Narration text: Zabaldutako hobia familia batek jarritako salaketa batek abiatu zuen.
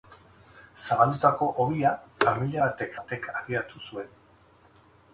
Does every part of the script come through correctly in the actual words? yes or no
no